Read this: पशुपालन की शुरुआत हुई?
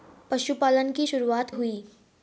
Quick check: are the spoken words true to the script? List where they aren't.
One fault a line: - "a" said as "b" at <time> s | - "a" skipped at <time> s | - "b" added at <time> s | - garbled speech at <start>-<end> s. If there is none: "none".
none